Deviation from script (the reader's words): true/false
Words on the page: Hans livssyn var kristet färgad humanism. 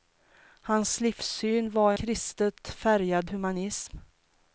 false